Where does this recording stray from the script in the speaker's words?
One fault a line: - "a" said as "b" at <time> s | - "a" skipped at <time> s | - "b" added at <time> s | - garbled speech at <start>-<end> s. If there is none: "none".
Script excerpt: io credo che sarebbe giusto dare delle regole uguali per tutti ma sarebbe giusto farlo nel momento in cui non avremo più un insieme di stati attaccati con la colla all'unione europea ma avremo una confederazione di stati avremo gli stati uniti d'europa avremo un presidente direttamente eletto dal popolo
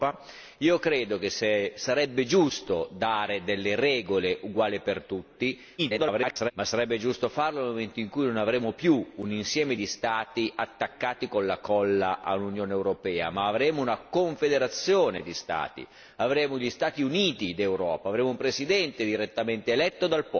- garbled speech at 5.8-6.5 s